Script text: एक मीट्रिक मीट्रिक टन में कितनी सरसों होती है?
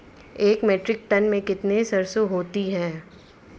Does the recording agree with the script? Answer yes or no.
no